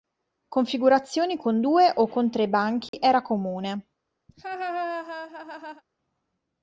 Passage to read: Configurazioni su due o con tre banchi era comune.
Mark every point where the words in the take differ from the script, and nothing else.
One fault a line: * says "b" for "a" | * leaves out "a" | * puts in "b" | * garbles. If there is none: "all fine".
* says "con" for "su"